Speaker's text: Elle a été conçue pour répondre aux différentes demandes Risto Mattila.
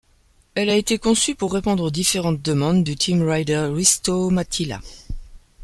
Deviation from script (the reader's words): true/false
true